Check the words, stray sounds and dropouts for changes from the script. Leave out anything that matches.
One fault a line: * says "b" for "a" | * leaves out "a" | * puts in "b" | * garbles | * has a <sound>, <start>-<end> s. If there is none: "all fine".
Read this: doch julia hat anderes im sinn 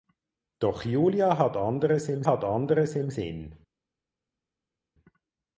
* puts in "hat anderes im"